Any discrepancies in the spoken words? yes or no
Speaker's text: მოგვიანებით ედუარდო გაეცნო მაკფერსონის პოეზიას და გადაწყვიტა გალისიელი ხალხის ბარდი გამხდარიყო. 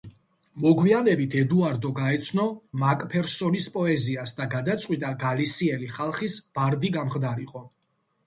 no